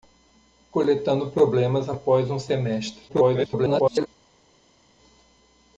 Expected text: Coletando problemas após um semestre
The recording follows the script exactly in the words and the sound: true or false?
false